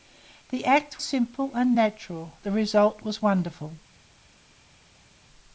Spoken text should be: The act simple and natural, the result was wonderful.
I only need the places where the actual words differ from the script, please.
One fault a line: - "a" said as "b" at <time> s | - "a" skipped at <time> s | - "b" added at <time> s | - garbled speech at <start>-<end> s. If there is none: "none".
none